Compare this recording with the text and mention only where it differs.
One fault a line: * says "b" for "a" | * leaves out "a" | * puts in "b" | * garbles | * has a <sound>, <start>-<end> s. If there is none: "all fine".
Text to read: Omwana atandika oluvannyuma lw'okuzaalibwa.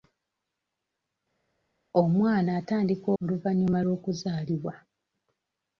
all fine